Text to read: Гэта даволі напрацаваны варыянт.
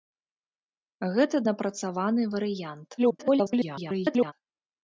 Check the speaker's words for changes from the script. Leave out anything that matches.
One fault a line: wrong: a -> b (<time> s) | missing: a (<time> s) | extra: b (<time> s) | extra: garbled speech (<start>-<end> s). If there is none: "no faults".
missing: даволі (1.4 s)
extra: garbled speech (3.0-4.3 s)